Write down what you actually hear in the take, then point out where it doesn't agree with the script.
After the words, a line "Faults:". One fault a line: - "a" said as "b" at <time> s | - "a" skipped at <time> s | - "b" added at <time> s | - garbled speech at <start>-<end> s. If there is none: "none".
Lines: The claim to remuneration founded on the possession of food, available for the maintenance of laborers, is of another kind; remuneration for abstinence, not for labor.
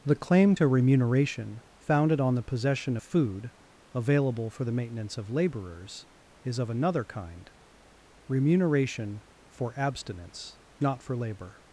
The claim to remuneration founded on the possession food, available for the maintenance of laborers, is of another kind; remuneration for abstinence, not for labor.
Faults:
- "of" skipped at 3.0 s